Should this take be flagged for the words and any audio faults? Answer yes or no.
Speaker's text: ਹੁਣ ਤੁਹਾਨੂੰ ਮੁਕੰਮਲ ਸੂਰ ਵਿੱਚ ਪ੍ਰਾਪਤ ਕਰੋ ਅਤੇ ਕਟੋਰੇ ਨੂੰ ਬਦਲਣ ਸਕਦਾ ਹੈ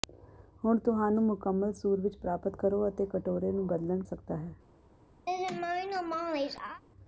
yes